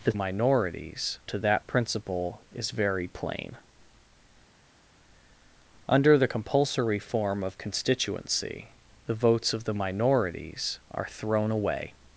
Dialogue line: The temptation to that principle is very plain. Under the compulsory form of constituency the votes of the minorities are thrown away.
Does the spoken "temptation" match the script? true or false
false